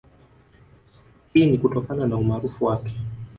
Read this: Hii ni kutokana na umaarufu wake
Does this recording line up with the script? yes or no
yes